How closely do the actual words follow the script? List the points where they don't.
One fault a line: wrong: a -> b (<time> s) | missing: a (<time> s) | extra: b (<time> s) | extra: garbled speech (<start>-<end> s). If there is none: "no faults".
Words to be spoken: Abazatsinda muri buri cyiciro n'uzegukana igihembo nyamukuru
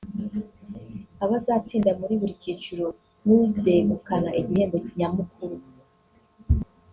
no faults